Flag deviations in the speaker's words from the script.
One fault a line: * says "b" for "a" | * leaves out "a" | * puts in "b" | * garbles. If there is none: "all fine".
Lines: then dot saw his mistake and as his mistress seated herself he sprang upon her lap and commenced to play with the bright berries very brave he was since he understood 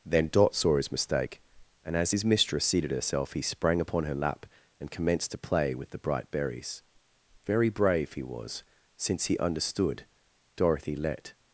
* puts in "dorothy let"